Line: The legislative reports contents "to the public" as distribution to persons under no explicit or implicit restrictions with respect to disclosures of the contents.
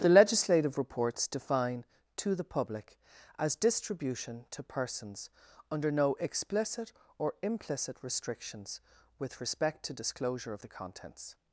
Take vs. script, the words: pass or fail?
fail